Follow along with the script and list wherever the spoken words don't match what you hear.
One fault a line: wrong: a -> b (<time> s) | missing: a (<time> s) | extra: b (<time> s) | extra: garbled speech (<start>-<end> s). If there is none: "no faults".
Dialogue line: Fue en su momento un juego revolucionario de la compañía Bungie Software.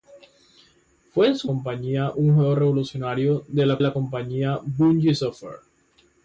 wrong: momento -> compañía (1.4 s)
extra: la (3.8 s)